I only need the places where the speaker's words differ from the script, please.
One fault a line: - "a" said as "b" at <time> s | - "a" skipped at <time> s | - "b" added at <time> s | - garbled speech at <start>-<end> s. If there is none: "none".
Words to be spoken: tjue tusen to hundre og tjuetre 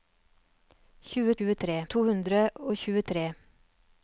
- "tusen" said as "tjuetre" at 1.4 s